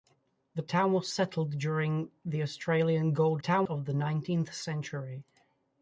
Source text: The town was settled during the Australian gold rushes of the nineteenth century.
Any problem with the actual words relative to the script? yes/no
yes